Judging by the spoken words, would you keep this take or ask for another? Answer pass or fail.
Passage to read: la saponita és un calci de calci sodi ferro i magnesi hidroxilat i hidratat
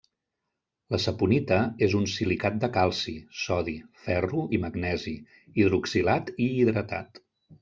fail